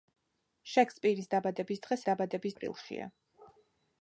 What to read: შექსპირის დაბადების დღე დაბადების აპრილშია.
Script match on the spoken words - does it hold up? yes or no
yes